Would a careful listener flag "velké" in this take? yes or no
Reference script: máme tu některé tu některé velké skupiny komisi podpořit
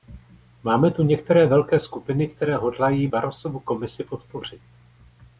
yes